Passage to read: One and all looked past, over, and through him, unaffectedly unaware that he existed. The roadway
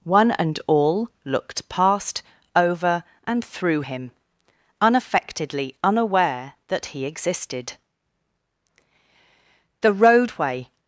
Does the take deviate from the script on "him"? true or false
false